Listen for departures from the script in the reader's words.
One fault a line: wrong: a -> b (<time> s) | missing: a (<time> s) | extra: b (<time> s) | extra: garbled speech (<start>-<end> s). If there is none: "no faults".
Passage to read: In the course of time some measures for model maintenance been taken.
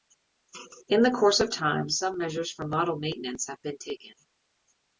extra: have (3.5 s)